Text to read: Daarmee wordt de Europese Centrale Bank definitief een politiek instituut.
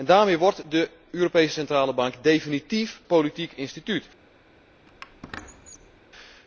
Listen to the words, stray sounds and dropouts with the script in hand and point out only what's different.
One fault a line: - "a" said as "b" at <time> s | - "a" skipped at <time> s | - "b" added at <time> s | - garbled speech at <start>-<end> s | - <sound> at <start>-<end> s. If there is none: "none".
- "een" skipped at 3.0 s
- squeak at 4.9-6.0 s